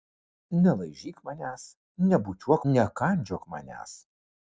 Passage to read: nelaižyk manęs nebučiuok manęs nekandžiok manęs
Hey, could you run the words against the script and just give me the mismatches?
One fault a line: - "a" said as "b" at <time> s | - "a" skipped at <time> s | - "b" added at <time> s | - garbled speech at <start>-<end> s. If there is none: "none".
- "manęs" skipped at 2.6 s